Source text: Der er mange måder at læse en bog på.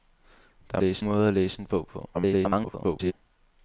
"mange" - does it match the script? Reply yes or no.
no